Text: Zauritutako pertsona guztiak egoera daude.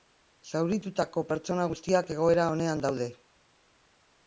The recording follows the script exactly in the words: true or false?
false